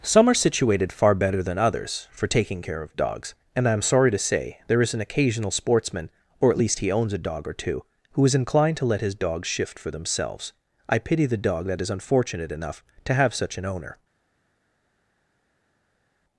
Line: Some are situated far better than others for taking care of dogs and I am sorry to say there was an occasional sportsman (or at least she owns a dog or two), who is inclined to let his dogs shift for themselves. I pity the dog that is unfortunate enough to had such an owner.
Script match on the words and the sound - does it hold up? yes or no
no